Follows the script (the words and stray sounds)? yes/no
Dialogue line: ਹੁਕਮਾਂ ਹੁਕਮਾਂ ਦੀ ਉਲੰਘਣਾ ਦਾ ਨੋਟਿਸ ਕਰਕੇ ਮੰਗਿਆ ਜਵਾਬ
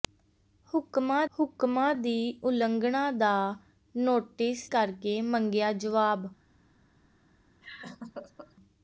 no